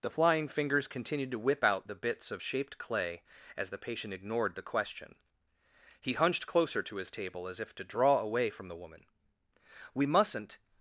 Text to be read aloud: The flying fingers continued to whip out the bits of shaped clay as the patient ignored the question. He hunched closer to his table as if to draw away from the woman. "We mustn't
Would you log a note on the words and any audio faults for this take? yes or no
no